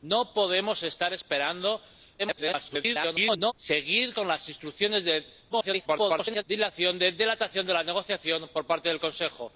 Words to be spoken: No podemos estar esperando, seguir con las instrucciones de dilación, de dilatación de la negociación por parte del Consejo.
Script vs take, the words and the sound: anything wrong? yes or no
yes